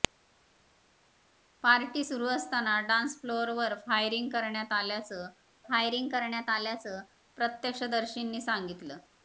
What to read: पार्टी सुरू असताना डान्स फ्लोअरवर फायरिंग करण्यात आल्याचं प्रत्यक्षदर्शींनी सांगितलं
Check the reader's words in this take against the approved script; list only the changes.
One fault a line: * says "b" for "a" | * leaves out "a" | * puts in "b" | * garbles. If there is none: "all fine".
* puts in "फायरिंग करण्यात आल्याचं"